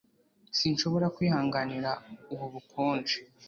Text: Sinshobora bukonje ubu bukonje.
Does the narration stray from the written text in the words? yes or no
yes